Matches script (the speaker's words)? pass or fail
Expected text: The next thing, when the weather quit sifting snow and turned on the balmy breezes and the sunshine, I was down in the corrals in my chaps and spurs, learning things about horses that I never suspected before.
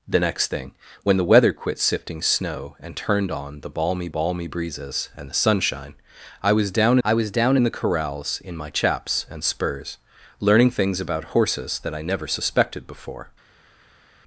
fail